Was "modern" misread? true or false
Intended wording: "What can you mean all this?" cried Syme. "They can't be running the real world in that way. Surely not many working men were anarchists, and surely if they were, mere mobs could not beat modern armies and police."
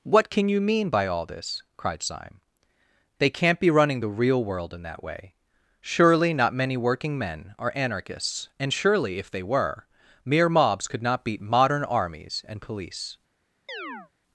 false